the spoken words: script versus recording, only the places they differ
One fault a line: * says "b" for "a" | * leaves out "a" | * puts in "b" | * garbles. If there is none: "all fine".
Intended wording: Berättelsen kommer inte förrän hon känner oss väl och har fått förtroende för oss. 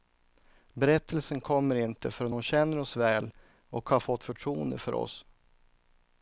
all fine